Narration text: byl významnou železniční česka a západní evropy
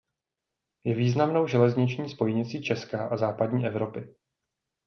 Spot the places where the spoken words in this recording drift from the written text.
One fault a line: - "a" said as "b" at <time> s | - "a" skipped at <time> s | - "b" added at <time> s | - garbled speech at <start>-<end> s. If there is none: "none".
- "byl" said as "je" at 0.8 s
- "spojnicí" added at 2.1 s